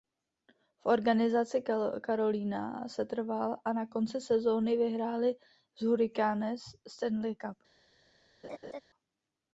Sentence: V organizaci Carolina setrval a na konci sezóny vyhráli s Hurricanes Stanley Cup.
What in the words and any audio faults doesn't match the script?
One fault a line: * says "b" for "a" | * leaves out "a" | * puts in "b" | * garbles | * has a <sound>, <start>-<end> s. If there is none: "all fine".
* has a laugh, 8.4-8.8 s